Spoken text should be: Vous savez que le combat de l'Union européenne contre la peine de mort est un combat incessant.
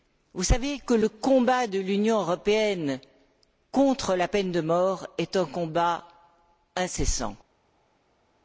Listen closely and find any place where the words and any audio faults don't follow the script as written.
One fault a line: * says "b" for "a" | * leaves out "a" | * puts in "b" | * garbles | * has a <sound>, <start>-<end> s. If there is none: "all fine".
all fine